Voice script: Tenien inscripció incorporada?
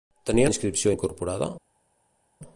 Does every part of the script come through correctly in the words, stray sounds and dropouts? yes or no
yes